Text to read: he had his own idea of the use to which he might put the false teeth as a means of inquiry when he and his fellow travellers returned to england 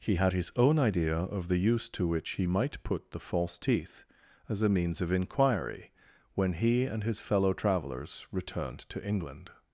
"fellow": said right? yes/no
yes